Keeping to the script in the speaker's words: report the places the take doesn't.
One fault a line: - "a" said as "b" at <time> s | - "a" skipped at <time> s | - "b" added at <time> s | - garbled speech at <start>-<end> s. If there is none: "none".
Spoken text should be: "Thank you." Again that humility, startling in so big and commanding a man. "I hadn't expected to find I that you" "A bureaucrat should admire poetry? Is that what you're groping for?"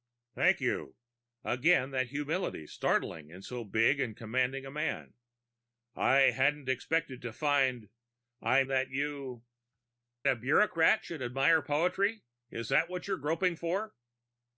none